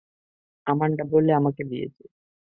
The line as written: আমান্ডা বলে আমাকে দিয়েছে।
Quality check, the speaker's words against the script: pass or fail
pass